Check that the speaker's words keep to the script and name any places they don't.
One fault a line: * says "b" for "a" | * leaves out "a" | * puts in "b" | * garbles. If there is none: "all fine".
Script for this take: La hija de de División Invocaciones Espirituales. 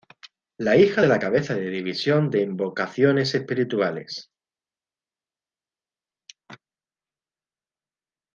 * puts in "la cabeza"
* puts in "de"